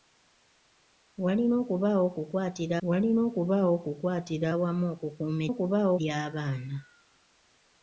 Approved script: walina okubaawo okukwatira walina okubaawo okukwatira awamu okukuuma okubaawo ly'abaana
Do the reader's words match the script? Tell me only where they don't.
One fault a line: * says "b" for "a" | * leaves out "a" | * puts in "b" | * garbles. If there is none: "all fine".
all fine